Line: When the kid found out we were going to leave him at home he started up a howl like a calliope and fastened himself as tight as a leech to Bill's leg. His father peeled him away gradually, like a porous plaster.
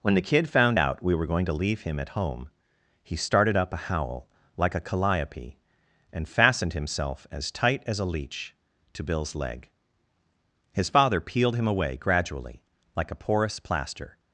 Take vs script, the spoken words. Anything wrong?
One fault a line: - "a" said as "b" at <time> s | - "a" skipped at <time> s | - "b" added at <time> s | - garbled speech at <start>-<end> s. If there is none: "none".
none